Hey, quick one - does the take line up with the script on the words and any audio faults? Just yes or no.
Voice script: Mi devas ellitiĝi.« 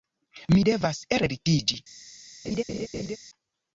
no